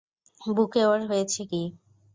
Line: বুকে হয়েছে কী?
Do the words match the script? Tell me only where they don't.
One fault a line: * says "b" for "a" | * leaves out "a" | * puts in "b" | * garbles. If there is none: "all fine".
* puts in "ওর"